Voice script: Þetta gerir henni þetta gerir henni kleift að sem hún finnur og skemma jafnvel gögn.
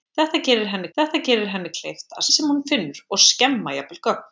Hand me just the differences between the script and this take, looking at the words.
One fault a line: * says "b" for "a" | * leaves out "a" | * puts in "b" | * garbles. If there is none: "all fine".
all fine